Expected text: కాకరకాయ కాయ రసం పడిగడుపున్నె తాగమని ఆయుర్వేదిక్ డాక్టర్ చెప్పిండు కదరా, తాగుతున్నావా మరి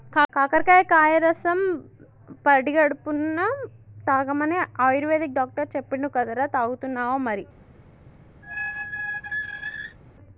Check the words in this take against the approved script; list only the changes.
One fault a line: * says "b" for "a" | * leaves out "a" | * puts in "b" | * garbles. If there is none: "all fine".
all fine